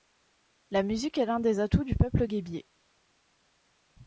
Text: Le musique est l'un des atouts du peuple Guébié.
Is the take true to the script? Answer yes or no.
no